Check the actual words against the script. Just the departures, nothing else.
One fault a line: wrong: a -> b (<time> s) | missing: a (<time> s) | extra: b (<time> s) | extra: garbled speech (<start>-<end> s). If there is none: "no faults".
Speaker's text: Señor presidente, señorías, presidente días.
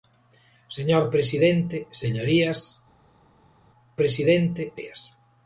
no faults